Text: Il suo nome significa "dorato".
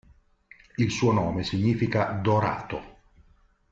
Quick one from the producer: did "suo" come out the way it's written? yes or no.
yes